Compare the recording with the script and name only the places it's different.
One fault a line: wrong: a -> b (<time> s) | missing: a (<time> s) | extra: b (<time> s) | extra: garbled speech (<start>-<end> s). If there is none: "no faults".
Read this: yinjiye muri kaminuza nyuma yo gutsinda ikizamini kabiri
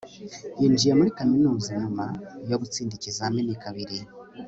no faults